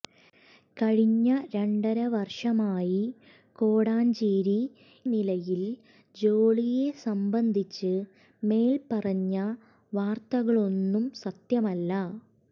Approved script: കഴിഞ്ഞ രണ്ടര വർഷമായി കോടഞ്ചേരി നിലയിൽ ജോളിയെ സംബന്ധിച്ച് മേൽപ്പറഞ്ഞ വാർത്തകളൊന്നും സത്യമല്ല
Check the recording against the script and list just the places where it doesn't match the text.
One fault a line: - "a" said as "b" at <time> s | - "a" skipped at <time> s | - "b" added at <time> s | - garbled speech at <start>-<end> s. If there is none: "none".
none